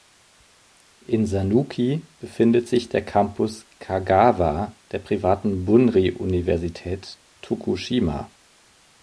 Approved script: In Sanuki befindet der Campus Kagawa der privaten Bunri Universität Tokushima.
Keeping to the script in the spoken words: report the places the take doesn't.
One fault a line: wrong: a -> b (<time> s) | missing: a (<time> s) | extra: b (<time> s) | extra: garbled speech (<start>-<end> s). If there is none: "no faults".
extra: sich (2.7 s)